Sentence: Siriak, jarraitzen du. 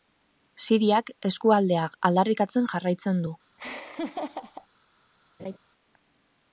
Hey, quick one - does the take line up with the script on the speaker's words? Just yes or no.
no